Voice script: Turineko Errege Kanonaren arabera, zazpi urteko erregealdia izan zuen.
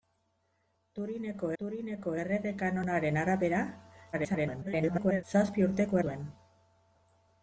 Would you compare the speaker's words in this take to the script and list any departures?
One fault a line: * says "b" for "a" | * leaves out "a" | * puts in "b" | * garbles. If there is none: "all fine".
* puts in "turineko"
* garbles
* leaves out "erregealdia izan"